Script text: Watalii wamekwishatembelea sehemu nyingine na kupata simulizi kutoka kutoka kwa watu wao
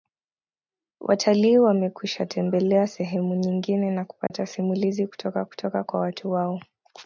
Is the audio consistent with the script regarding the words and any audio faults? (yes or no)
no